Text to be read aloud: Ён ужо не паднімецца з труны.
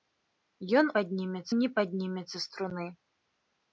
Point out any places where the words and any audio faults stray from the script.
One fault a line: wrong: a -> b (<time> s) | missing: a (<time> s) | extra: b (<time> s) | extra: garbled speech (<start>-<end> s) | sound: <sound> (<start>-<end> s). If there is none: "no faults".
wrong: ужо -> паднімецца (1.0 s)